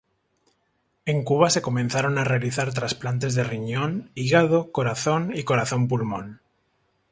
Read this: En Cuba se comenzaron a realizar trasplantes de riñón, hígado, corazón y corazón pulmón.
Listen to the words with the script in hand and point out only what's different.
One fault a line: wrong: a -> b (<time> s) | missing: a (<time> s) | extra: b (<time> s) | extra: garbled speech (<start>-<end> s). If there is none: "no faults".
no faults